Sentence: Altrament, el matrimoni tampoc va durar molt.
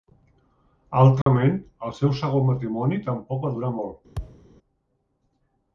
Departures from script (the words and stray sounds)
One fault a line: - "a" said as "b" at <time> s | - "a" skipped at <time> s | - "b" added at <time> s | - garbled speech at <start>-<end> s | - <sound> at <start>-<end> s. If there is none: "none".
- dropout at 1.2-1.3 s
- "seu segon" added at 2.0 s
- thud at 4.2-4.5 s